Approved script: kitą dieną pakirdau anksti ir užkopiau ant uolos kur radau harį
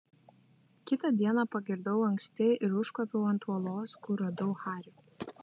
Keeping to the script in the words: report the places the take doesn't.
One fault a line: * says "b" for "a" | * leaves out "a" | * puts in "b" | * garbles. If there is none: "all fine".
all fine